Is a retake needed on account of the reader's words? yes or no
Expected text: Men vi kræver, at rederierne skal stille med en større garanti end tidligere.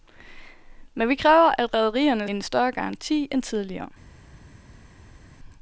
yes